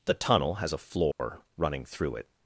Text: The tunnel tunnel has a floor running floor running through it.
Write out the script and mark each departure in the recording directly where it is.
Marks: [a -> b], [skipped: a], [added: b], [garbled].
The tunnel [skipped: tunnel] has a floor running [skipped: floor running] through it.